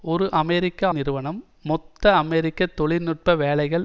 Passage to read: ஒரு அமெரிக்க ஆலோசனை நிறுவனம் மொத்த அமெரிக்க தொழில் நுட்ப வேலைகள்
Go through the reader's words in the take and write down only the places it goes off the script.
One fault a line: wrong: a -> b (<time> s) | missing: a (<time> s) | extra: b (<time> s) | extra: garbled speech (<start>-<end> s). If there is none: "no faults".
missing: ஆலோசனை (0.9 s)